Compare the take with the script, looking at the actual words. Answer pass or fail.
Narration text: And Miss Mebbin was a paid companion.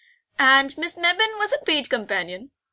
pass